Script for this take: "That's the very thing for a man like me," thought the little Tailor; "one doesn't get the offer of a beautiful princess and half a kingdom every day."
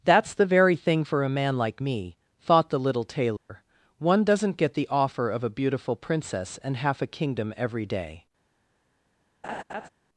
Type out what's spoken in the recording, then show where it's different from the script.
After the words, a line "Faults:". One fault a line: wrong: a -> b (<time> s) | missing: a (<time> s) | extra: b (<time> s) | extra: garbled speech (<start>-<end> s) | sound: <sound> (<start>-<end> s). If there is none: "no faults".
"That's the very thing for a man like me," thought the little Tailor; "one doesn't get the offer of a beautiful princess and half a kingdom every day."
Faults:
sound: dropout (3.4-3.5 s)
sound: laugh (9.4-9.9 s)